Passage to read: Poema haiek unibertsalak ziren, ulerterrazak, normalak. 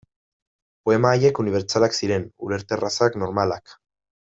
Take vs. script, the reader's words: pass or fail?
pass